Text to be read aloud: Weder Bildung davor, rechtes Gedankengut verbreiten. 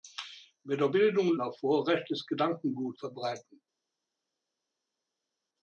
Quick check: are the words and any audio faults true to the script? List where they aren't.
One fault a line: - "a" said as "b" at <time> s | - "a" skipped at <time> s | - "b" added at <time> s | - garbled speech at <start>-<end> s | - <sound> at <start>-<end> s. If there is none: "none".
none